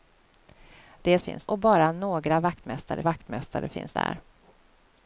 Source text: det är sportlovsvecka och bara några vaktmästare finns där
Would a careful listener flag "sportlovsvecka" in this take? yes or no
yes